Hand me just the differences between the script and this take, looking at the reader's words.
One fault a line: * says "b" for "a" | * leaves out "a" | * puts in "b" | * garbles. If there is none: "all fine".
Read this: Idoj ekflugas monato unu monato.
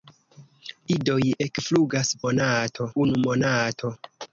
all fine